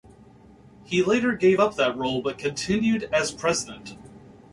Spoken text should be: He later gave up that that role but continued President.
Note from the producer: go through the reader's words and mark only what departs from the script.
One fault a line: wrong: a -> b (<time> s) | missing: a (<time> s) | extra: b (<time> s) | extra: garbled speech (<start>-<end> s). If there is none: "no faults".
missing: that (2.0 s)
extra: as (3.1 s)